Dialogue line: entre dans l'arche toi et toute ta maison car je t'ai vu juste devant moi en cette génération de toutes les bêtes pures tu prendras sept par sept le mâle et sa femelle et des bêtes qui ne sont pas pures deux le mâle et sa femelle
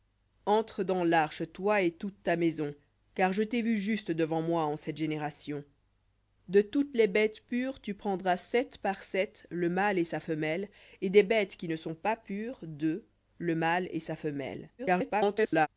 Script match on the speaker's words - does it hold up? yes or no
no